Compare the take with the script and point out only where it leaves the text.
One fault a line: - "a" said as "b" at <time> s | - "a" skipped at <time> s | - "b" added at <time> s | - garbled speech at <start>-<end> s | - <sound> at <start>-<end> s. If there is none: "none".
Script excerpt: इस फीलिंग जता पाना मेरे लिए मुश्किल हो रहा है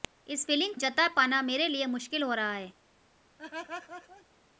- laugh at 3.4-4.3 s